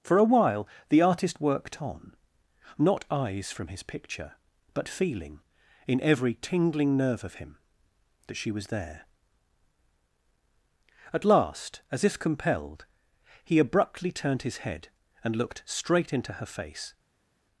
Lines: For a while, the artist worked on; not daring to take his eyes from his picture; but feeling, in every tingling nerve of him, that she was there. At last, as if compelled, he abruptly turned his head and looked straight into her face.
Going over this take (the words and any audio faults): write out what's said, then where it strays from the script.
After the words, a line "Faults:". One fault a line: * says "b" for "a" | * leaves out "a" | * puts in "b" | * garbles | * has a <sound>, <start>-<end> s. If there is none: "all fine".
For a while, the artist worked on; not eyes from his picture; but feeling, in every tingling nerve of him, that she was there. At last, as if compelled, he abruptly turned his head and looked straight into her face.
Faults:
* leaves out "daring to take his"